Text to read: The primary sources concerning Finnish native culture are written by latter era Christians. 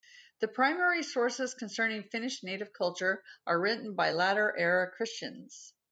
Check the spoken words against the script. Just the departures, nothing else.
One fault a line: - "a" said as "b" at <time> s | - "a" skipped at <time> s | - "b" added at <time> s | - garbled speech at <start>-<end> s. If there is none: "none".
none